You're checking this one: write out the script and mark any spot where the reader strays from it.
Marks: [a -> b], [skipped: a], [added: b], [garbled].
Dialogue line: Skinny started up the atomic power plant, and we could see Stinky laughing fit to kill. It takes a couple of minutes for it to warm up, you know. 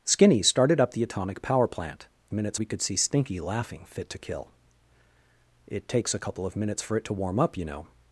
Skinny started up the atomic power plant, [and -> minutes] we could see Stinky laughing fit to kill. It takes a couple of minutes for it to warm up, you know.